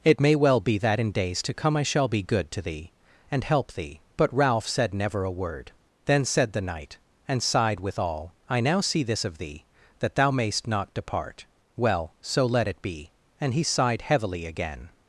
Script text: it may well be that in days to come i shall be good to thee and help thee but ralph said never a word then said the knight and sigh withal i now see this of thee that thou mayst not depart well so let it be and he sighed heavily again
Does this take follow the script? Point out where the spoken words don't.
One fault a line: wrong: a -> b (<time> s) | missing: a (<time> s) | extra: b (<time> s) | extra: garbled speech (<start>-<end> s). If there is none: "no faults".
wrong: sigh -> sighed (7.4 s)